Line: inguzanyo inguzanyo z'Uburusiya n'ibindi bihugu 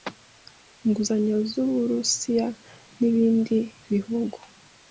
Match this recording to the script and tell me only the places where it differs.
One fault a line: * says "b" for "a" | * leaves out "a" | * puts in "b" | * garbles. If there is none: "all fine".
* leaves out "inguzanyo"